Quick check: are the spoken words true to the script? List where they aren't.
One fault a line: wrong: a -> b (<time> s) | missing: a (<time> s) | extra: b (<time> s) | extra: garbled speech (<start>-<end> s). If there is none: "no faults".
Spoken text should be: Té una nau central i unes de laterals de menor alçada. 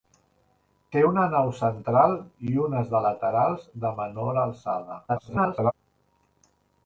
extra: garbled speech (5.1-5.7 s)